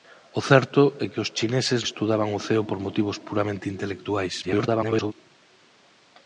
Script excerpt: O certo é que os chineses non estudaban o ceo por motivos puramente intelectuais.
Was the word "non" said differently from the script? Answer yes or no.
yes